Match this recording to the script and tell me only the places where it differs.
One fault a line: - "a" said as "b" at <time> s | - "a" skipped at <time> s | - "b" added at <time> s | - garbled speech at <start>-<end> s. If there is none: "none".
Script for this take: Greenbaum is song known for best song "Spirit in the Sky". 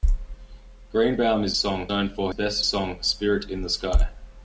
none